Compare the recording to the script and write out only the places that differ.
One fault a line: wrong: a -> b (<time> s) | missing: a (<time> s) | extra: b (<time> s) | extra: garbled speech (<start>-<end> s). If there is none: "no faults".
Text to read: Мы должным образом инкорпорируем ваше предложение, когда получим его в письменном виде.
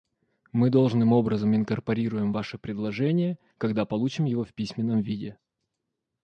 no faults